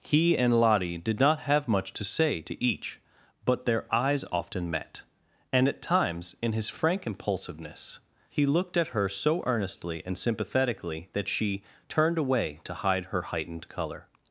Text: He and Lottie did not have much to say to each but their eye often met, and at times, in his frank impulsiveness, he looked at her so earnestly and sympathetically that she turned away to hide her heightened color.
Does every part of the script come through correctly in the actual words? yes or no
no